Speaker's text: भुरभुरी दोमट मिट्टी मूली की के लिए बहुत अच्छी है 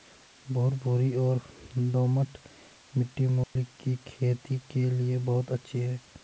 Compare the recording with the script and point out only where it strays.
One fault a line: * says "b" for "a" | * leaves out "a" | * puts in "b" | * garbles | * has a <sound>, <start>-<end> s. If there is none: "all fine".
* puts in "और"
* has a dropout, 3.4-3.6 s
* puts in "खेती"